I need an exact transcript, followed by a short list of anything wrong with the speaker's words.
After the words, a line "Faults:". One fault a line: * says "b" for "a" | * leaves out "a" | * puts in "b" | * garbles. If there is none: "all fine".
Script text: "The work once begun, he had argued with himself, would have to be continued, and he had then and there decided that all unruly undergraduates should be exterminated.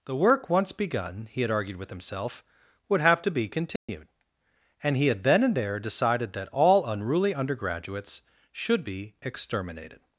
"The work once begun, he had argued with himself, would have to be continued, and he had then and there decided that all unruly undergraduates should be exterminated.
Faults:
all fine